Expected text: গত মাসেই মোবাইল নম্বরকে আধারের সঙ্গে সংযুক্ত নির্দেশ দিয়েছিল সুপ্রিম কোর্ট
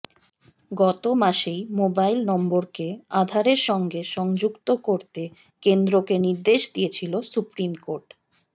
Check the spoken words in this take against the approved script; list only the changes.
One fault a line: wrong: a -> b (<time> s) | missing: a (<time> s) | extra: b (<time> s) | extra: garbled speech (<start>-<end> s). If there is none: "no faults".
extra: করতে কেন্দ্রকে (4.8 s)